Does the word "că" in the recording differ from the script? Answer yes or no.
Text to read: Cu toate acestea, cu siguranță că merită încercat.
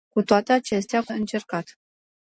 yes